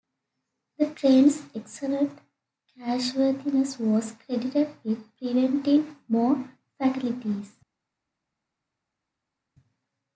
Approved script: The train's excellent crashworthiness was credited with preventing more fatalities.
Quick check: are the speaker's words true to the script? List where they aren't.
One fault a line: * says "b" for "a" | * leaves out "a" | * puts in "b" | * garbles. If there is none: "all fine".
all fine